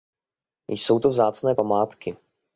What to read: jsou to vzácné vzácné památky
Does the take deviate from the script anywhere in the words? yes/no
yes